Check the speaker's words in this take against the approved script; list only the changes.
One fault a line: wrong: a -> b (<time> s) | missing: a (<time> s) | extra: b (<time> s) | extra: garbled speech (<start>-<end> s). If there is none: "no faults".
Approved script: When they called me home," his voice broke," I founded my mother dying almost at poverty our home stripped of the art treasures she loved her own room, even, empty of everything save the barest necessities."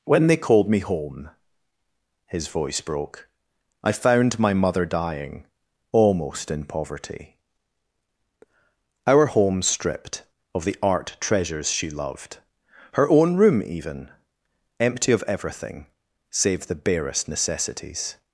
wrong: founded -> found (3.9 s)
wrong: at -> in (6.5 s)